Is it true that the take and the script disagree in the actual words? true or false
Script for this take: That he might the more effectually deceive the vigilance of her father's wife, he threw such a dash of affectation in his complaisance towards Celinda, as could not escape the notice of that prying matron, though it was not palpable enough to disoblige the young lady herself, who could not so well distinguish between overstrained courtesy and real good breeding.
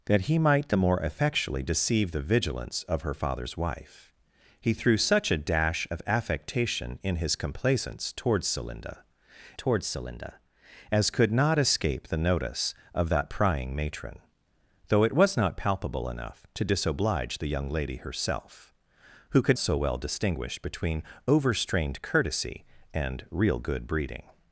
true